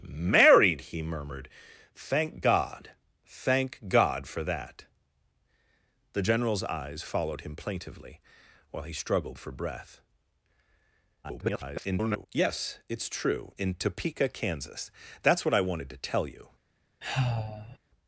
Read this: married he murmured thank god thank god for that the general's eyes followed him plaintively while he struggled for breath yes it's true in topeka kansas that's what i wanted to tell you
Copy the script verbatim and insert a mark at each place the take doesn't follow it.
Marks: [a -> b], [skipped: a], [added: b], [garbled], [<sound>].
married he murmured thank god thank god for that the general's eyes followed him plaintively while he struggled for breath [garbled] yes it's true in topeka kansas that's what i wanted to tell you [sigh]